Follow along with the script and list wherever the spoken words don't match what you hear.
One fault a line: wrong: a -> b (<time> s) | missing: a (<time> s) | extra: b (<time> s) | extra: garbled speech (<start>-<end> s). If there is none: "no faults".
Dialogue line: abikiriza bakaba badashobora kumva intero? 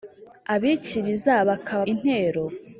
missing: badashobora kumva (1.8 s)